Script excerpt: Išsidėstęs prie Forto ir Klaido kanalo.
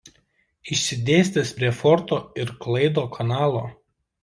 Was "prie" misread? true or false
false